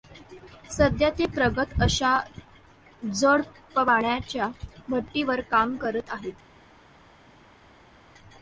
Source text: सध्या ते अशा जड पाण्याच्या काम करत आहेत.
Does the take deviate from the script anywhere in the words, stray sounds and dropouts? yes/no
yes